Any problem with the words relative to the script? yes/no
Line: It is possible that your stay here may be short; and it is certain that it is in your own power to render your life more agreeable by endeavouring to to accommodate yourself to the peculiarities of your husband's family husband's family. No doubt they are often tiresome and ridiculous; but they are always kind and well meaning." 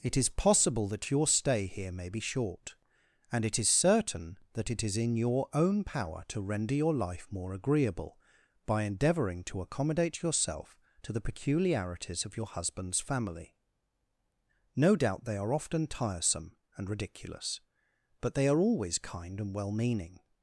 yes